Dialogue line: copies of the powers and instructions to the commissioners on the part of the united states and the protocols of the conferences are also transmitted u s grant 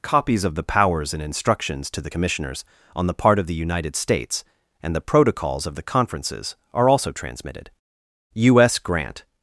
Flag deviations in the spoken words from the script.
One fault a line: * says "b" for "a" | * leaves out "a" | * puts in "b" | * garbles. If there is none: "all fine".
all fine